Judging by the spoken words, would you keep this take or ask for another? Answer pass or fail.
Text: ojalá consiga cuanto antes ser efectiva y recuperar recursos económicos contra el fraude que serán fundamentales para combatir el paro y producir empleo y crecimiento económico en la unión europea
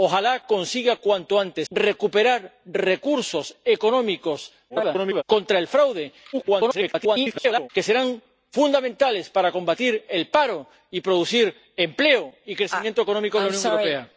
fail